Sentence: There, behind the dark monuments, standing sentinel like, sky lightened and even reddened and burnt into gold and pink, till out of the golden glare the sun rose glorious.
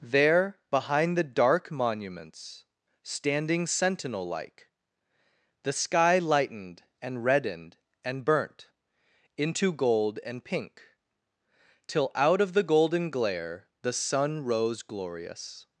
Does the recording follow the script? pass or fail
fail